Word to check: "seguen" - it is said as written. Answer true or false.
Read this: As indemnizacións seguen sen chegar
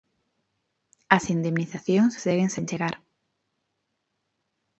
true